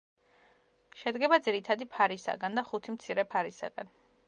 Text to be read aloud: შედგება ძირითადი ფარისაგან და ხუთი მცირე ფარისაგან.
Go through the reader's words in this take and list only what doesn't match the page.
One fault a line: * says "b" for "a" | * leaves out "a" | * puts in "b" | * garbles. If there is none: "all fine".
all fine